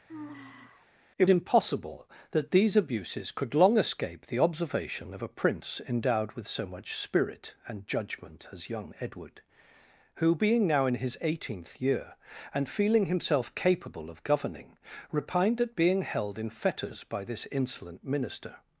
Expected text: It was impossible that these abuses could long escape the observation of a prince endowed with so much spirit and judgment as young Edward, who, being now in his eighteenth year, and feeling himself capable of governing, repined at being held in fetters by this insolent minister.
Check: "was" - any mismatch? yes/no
yes